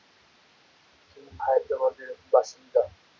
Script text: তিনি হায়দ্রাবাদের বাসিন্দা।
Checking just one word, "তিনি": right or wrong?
right